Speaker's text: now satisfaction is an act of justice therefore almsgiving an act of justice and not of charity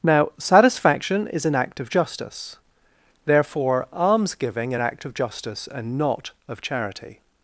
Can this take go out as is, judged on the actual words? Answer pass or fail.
pass